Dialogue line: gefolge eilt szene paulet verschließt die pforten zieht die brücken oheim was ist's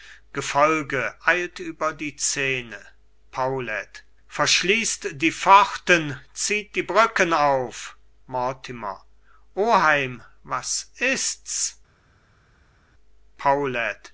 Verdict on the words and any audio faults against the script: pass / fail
fail